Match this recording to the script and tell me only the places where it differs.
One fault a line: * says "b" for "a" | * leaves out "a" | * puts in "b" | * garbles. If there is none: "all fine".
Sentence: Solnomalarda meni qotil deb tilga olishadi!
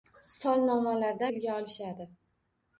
* leaves out "meni qotil deb"